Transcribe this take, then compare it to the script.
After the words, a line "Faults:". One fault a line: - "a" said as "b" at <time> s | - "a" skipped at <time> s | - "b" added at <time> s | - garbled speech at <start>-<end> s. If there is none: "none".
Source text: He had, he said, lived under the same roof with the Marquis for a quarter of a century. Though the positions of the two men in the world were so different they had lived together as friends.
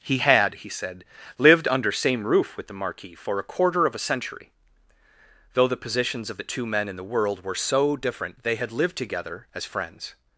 He had, he said, lived under same roof with the Marquis for a quarter of a century. Though the positions of the two men in the world were so different they had lived together as friends.
Faults:
- "the" skipped at 1.9 s